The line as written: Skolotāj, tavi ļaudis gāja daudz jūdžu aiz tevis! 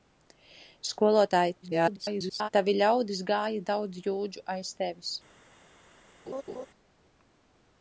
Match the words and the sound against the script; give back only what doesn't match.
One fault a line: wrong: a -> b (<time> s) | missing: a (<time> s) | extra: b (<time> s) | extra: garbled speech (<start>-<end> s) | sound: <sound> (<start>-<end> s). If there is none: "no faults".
extra: garbled speech (1.6-2.5 s)
sound: laugh (6.3-6.7 s)